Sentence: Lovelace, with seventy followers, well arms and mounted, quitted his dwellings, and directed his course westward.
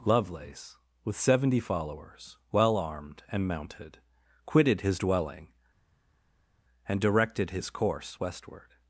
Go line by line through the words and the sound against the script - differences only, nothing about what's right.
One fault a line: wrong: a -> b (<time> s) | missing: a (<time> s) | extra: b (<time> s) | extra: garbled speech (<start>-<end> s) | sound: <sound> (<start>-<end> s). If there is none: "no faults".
wrong: arms -> armed (2.8 s)
wrong: dwellings -> dwelling (5.0 s)